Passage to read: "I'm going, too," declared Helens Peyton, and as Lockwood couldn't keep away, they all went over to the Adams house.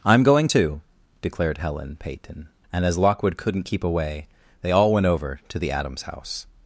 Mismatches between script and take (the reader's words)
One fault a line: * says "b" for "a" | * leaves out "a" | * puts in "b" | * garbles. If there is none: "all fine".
* says "Helen" for "Helens"